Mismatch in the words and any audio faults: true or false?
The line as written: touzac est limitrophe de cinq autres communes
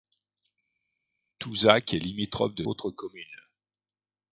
true